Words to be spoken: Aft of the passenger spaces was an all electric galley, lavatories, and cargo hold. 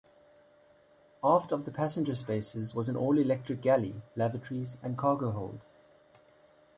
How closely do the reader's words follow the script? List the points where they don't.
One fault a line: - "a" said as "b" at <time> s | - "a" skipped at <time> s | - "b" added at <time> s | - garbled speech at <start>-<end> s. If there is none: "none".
none